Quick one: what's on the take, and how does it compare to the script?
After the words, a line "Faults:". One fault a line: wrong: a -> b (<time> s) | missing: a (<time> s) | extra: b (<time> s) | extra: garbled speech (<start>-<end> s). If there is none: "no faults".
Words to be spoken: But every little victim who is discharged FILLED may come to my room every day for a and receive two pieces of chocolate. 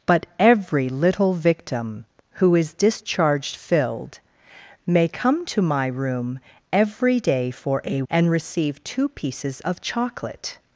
But every little victim who is discharged FILLED may come to my room every day for a and receive two pieces of chocolate.
Faults:
no faults